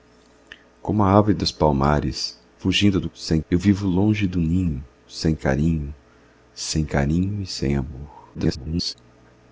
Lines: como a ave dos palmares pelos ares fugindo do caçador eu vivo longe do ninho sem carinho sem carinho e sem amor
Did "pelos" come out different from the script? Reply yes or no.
yes